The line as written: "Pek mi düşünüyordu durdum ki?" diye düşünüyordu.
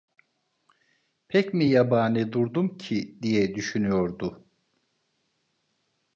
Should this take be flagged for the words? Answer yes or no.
yes